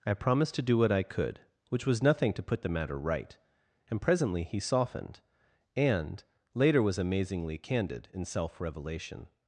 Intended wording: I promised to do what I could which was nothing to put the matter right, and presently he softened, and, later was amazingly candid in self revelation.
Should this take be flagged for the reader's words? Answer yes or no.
no